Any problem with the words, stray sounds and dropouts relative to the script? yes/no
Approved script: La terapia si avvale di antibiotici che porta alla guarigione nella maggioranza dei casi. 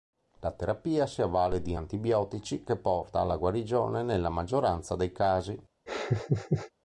yes